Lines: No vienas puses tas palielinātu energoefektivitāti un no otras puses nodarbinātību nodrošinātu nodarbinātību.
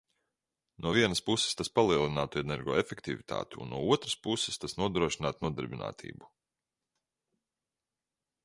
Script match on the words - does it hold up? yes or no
no